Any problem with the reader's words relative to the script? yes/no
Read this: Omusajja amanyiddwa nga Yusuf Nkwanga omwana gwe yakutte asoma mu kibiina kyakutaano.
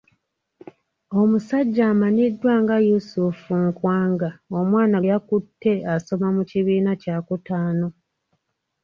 yes